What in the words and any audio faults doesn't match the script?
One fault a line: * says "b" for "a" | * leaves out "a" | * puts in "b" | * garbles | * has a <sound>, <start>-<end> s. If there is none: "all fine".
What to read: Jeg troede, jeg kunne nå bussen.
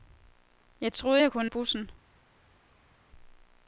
* leaves out "nå"